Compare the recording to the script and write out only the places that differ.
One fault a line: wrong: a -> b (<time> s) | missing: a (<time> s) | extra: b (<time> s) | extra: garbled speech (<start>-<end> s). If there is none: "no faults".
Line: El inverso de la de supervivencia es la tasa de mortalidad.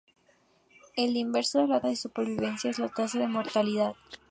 no faults